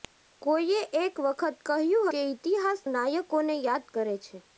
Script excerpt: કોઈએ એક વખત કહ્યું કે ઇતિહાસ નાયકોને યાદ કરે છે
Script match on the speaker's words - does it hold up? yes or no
yes